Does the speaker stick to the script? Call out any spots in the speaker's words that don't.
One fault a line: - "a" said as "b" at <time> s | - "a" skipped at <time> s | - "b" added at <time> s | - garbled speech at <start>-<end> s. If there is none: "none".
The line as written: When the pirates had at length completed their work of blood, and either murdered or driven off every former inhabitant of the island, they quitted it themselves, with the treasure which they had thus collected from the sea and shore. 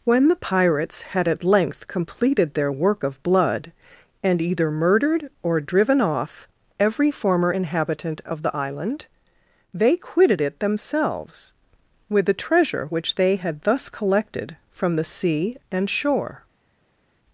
none